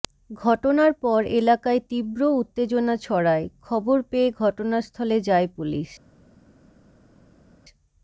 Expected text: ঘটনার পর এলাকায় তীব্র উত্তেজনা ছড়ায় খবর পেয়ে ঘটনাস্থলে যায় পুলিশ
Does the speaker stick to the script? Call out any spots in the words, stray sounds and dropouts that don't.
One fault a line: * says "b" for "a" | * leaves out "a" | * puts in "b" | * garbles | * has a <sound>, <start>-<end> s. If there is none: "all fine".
all fine